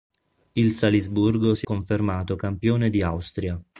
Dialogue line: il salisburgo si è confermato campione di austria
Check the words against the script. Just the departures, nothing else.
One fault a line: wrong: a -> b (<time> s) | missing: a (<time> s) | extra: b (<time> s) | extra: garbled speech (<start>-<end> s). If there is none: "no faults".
missing: è (1.7 s)